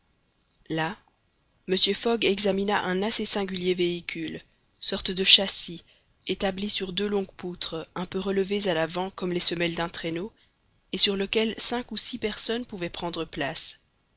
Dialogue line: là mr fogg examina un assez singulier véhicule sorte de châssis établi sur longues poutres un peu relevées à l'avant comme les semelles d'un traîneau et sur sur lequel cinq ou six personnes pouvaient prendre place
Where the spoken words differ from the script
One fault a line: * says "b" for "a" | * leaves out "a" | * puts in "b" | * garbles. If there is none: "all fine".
* puts in "deux"
* leaves out "sur"